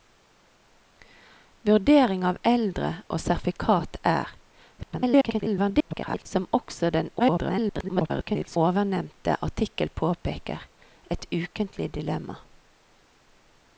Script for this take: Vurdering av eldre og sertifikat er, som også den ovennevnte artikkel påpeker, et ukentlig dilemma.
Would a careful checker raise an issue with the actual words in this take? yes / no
yes